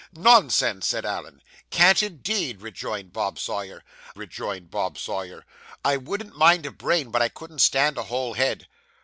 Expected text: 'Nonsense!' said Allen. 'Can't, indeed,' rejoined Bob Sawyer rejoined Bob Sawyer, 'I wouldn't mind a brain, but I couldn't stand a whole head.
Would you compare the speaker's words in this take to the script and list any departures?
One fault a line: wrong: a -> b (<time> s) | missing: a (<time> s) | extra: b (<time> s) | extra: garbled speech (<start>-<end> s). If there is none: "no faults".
no faults